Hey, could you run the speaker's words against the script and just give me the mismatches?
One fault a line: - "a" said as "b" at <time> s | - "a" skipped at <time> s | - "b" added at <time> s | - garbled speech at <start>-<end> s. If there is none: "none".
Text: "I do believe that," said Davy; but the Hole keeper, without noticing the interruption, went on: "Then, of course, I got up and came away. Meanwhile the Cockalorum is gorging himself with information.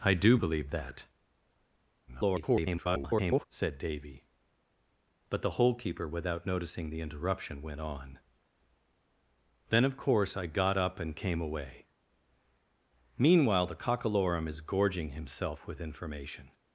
- garbled speech at 2.1-3.5 s